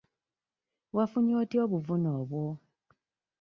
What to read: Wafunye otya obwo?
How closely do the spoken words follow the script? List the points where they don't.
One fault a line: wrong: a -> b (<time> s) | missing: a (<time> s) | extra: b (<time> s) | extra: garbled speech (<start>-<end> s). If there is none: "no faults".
extra: obuvune (1.6 s)